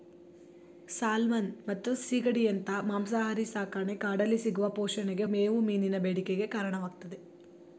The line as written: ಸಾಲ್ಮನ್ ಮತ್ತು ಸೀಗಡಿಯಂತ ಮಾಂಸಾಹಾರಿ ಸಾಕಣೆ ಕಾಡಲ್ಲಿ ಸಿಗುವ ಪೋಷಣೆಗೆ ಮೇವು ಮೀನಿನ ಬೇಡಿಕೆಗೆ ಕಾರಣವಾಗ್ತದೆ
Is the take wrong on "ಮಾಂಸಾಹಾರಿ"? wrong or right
right